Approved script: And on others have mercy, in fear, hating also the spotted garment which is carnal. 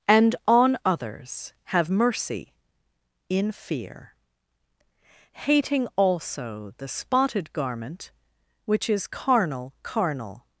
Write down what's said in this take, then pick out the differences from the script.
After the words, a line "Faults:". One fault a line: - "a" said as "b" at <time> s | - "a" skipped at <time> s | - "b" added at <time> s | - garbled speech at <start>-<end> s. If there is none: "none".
And on others have mercy, in fear, hating also the spotted garment which is carnal carnal.
Faults:
- "carnal" added at 9.8 s